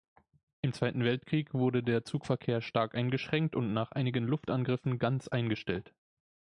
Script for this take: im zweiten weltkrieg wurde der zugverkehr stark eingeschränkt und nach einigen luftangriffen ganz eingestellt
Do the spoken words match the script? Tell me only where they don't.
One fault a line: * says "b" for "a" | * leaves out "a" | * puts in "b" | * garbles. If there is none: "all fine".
all fine